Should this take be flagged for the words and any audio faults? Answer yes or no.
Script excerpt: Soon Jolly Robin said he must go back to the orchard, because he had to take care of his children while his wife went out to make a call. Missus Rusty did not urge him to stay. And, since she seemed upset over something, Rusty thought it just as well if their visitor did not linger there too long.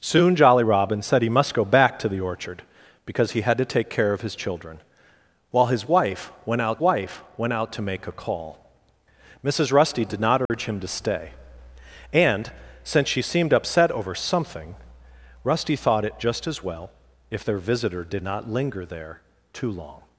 yes